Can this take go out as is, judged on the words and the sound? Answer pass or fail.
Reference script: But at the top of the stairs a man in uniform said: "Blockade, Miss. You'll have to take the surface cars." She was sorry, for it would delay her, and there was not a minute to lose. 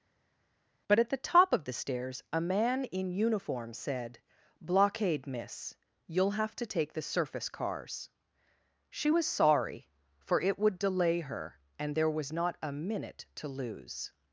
pass